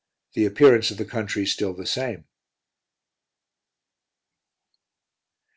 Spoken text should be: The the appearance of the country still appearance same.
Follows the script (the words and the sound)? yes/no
no